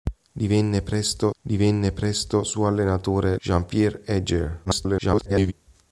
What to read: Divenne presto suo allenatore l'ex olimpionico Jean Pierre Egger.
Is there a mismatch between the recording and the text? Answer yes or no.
yes